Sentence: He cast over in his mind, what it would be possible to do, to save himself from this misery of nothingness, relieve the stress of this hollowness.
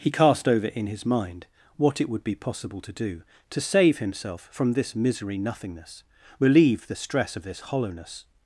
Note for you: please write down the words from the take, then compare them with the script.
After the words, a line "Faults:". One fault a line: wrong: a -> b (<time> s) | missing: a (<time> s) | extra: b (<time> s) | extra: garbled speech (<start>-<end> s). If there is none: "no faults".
He cast over in his mind, what it would be possible to do, to save himself from this misery nothingness, relieve the stress of this hollowness.
Faults:
missing: of (5.4 s)